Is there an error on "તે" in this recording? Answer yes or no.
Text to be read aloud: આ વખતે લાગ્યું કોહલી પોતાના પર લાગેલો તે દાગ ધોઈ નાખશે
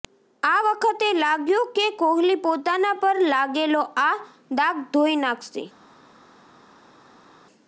yes